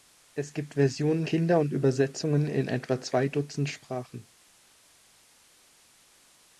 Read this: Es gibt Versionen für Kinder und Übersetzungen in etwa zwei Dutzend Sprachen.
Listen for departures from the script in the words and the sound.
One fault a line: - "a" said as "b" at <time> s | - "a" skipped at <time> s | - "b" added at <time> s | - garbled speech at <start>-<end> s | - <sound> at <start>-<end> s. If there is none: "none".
- "für" skipped at 1.3 s